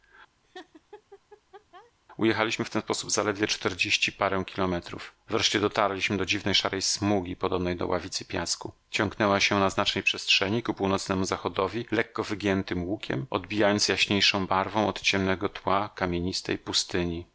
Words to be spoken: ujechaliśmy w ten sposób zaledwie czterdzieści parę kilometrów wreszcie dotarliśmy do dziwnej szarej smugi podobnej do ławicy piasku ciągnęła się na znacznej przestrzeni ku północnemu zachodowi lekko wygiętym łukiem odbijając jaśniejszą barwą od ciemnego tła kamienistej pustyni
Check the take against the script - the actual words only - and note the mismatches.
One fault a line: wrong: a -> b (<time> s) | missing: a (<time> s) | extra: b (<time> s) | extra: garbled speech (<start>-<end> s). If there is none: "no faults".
no faults